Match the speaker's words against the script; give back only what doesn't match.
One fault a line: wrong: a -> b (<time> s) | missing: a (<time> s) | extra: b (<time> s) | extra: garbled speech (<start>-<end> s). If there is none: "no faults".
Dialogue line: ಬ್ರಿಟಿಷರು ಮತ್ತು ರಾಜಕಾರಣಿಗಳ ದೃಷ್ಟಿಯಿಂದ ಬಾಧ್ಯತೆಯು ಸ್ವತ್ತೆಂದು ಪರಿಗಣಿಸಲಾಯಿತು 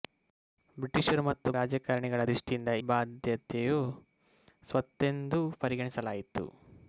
no faults